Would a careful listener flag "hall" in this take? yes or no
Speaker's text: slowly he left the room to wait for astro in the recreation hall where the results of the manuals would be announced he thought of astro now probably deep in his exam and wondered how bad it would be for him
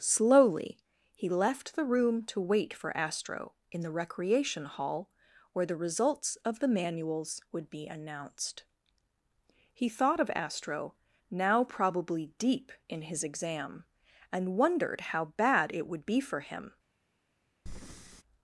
no